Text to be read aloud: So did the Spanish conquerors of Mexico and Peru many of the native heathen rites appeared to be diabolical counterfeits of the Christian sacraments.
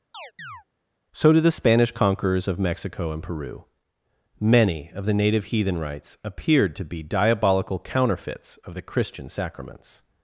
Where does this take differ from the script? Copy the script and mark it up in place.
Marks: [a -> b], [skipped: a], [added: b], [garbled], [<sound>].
[chirp] So did the Spanish conquerors of Mexico and Peru many of the native heathen rites appeared to be diabolical counterfeits of the Christian sacraments.